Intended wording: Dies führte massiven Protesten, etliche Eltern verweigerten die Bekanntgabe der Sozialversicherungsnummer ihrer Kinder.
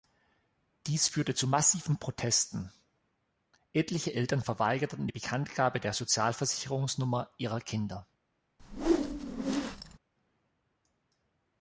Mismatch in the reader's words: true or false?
true